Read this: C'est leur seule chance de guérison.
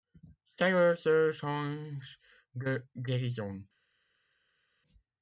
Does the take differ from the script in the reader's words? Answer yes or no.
no